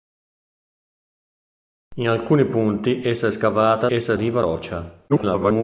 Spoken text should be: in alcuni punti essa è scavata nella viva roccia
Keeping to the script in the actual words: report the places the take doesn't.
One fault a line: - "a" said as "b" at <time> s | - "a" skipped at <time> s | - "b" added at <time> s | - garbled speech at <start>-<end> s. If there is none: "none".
- "nella" said as "essa" at 3.9 s
- garbled speech at 5.1-5.6 s